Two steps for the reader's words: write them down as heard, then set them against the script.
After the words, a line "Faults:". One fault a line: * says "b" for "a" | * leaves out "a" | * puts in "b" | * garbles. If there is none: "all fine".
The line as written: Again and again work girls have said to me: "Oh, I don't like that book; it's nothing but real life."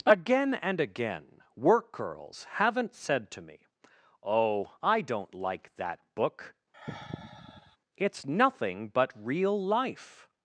Again and again work girls haven't said to me: "Oh, I don't like that book; it's nothing but real life."
Faults:
* says "haven't" for "have"